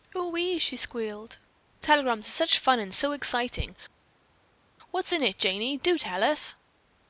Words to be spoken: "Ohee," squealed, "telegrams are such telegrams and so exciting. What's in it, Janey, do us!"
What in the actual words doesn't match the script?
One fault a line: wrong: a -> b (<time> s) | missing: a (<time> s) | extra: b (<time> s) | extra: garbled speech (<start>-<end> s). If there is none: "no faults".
extra: she (0.6 s)
wrong: telegrams -> fun (2.6 s)
extra: tell (6.0 s)